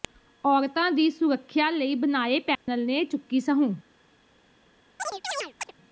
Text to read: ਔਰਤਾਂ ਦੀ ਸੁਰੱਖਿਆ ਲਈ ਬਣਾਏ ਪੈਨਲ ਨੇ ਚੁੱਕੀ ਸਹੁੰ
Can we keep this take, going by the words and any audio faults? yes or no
no